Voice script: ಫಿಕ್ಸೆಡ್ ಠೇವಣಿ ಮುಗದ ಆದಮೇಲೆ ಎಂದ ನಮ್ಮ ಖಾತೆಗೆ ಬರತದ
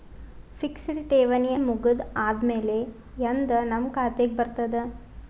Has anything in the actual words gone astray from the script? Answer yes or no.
no